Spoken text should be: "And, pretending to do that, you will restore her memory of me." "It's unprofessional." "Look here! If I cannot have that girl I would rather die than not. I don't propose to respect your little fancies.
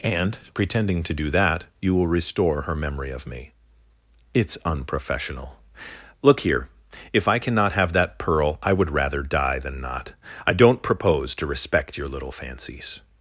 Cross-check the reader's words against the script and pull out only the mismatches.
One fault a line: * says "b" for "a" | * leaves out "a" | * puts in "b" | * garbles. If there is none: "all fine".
* says "pearl" for "girl"